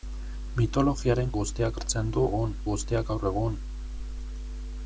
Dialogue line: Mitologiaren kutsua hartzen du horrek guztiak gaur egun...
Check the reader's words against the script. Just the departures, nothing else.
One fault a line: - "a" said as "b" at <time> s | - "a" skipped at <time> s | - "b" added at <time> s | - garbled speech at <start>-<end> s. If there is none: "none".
- "kutsua" said as "guztiak" at 1.4 s
- "horrek" said as "egun" at 2.3 s